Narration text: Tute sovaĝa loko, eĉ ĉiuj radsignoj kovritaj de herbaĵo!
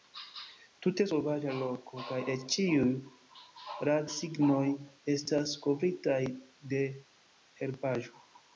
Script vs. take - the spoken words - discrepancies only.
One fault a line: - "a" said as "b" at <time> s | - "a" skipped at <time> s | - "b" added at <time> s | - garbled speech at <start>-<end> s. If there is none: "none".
- "kaj" added at 2.1 s
- "estas" added at 5.2 s